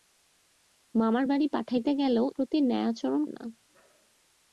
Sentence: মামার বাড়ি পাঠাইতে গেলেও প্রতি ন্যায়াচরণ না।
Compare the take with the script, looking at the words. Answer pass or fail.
pass